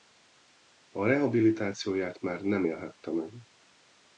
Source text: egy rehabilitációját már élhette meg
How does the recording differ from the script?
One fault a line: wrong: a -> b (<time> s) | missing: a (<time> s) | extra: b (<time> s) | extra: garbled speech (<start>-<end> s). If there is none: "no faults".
wrong: egy -> a (0.9 s)
extra: nem (2.4 s)